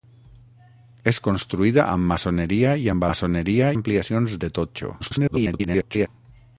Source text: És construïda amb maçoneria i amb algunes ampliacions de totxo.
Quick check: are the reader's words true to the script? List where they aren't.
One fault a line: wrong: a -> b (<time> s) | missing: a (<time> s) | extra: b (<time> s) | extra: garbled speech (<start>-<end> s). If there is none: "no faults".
wrong: algunes -> maçoneria (3.1 s)
extra: garbled speech (5.0-6.1 s)